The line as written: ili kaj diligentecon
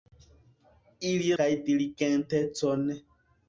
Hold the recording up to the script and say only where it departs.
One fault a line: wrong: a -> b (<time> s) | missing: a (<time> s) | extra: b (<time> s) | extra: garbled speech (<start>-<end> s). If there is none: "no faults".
no faults